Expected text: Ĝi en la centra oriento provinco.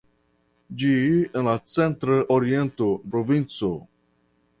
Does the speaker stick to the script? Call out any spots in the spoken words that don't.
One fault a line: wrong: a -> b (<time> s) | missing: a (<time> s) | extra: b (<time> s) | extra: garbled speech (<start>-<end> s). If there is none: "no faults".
no faults